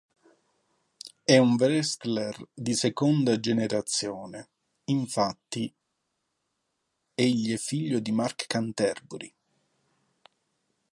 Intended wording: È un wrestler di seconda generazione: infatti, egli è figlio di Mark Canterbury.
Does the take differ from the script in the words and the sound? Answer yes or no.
no